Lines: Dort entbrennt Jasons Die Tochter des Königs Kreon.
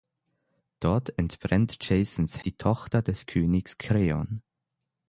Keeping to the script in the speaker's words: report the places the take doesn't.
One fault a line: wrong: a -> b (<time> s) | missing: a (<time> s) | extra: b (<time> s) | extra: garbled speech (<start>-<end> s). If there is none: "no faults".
no faults